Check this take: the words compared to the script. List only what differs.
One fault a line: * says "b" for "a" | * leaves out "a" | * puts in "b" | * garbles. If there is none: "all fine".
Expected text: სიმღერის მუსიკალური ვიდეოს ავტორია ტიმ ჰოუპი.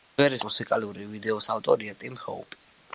all fine